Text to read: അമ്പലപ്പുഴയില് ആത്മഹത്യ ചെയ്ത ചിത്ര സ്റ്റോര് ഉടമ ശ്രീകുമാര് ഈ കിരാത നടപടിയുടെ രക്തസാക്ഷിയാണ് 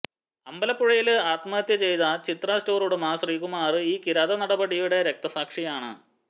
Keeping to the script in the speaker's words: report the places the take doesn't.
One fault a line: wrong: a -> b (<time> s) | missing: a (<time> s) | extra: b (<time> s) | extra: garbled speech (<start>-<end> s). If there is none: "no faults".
no faults